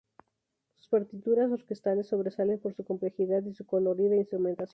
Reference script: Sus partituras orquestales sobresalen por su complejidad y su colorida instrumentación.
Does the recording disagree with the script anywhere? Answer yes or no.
no